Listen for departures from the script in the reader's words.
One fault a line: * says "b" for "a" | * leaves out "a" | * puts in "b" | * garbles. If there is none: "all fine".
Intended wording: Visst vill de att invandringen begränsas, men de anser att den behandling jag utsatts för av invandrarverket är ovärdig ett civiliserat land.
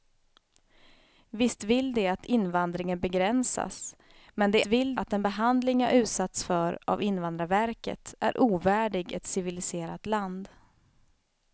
* says "vill" for "anser"